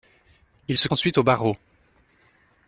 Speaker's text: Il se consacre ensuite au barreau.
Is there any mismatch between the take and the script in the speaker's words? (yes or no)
yes